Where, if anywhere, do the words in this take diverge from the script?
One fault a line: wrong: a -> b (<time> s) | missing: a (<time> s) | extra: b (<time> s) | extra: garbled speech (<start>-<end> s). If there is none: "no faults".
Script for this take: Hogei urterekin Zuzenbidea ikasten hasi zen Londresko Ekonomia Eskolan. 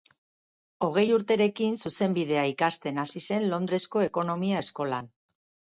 no faults